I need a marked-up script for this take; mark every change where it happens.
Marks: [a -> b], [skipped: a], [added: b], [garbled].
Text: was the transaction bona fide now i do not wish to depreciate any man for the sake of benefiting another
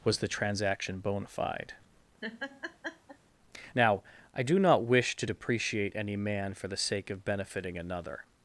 was the transaction bona fide now i do not wish to depreciate any man for the sake of benefiting another